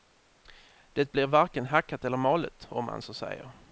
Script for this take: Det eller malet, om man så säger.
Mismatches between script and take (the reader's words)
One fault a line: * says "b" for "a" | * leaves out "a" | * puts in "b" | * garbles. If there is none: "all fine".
* puts in "blir varken hackat"